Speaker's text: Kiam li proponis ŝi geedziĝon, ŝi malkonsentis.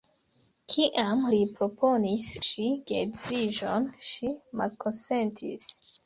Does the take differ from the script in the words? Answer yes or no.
no